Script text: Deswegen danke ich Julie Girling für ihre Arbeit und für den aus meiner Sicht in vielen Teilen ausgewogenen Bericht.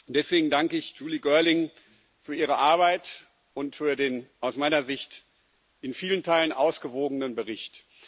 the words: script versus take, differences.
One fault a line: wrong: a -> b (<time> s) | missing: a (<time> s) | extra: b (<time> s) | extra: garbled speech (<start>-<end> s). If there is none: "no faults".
no faults